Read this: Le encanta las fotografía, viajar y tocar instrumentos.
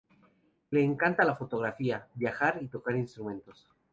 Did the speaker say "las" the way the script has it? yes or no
no